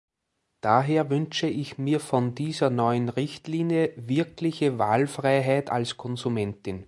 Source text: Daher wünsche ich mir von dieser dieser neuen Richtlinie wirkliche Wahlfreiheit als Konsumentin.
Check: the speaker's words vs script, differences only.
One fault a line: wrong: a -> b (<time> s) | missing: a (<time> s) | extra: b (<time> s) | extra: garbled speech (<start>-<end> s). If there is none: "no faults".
missing: dieser (2.7 s)